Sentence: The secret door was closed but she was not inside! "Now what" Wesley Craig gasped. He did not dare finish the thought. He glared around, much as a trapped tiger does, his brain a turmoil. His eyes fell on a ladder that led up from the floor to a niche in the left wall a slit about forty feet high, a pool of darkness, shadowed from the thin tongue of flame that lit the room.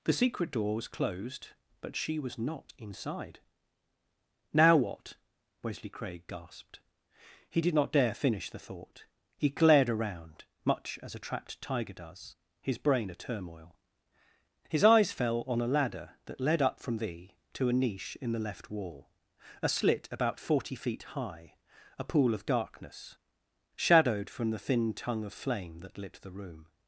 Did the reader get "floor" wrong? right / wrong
wrong